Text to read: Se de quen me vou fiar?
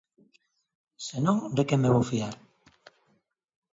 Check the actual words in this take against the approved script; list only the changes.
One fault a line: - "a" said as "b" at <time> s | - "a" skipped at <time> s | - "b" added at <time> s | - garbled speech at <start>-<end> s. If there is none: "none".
- "non" added at 1.2 s